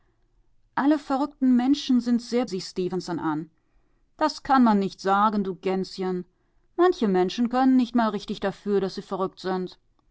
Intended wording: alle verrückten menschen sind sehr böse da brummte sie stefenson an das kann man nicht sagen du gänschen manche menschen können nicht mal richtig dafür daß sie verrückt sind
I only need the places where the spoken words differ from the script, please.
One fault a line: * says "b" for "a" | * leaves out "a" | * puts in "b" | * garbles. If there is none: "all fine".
* leaves out "böse da brummte"